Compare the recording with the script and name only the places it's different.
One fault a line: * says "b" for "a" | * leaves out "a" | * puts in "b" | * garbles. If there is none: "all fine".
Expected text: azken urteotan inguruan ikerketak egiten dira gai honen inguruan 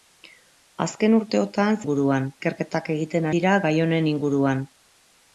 all fine